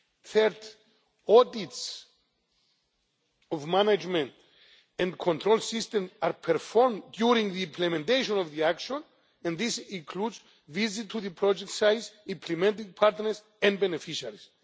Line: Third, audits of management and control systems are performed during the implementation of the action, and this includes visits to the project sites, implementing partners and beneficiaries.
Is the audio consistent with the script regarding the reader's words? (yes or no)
yes